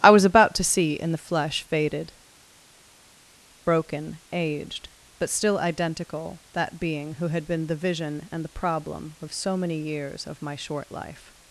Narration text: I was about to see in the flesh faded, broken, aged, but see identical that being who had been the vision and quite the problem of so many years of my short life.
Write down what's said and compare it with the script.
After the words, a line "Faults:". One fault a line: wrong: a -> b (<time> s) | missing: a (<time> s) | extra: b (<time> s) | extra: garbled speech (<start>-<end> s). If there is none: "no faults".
I was about to see in the flesh faded, broken, aged, but still identical that being who had been the vision and the problem of so many years of my short life.
Faults:
wrong: see -> still (5.3 s)
missing: quite (8.4 s)